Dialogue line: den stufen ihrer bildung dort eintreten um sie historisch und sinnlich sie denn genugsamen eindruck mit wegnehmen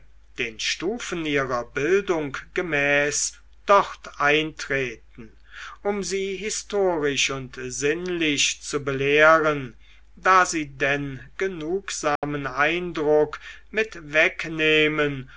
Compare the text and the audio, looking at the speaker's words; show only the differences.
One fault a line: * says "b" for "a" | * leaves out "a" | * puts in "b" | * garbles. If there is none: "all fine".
* puts in "gemäß"
* puts in "zu belehren da"